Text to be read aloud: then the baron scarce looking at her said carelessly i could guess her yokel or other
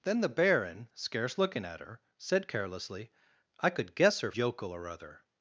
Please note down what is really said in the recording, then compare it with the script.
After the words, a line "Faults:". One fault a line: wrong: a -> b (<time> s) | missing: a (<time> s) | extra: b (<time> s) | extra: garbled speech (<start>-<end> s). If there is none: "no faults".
then the baron scarce looking at her said carelessly i could guess her yokel or other
Faults:
no faults